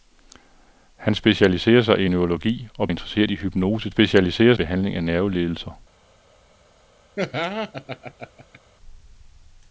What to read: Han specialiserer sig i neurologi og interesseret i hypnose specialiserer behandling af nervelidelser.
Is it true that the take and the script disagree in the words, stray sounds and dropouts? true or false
true